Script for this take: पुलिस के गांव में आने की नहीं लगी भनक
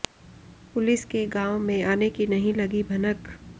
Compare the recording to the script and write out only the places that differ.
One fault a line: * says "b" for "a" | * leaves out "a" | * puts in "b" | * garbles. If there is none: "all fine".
all fine